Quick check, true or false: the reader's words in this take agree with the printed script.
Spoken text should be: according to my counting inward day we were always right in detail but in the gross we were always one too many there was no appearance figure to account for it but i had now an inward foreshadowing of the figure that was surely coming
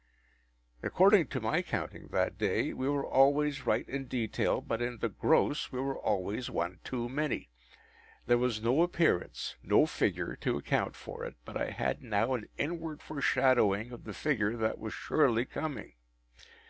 false